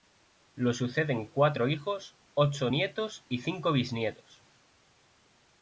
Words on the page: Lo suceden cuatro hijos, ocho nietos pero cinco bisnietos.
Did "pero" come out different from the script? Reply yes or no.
yes